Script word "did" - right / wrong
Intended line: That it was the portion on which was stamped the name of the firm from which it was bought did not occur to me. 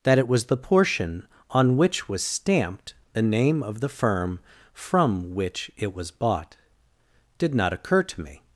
right